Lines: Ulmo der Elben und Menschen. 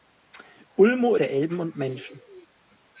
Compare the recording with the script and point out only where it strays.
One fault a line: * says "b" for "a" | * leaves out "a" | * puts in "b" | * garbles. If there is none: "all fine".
all fine